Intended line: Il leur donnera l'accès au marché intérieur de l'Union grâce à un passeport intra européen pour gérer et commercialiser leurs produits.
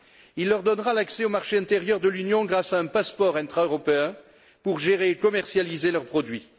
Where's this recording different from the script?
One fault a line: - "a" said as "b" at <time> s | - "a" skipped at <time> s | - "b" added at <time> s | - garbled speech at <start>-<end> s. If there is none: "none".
none